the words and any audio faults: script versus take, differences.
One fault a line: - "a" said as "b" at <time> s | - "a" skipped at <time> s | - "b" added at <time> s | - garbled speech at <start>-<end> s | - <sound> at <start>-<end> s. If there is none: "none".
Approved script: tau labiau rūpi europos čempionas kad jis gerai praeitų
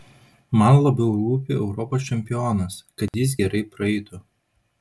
- "tau" said as "man" at 0.6 s
- dropout at 3.1-3.1 s